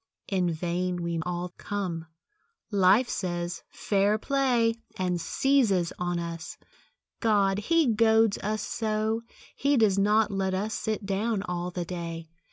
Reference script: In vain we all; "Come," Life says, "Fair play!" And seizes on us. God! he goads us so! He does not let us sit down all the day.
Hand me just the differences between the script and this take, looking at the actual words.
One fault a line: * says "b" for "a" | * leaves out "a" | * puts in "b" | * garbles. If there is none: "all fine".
all fine